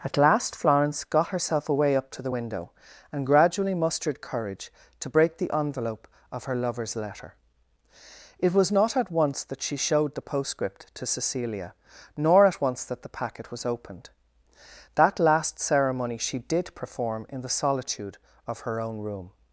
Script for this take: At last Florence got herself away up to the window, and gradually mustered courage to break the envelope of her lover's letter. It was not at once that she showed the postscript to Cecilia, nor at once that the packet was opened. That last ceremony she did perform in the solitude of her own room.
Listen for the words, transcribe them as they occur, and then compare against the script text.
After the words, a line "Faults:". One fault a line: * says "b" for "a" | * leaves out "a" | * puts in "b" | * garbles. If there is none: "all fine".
At last Florence got herself away up to the window, and gradually mustered courage to break the envelope of her lover's letter. It was not at once that she showed the postscript to Cecilia, nor at once that the packet was opened. That last ceremony she did perform in the solitude of her own room.
Faults:
all fine